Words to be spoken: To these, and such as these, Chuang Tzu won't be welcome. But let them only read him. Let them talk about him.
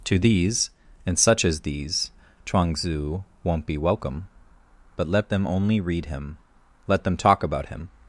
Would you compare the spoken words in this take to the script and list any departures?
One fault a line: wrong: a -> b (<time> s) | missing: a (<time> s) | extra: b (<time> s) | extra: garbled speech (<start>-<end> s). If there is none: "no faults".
no faults